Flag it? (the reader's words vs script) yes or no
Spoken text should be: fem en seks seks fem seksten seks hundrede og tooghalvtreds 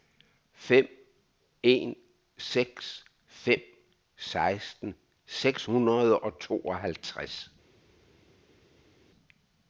yes